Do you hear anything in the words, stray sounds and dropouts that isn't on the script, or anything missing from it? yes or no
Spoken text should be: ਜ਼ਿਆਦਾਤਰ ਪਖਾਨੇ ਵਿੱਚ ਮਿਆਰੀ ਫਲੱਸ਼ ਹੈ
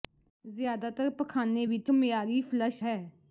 no